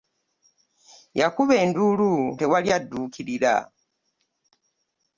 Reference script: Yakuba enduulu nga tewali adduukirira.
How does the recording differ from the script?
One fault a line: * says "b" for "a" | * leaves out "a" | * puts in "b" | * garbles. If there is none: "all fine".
* leaves out "nga"